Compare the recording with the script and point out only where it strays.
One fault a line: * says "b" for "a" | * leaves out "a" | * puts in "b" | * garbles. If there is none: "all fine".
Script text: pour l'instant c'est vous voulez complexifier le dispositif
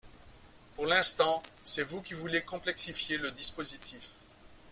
* puts in "qui"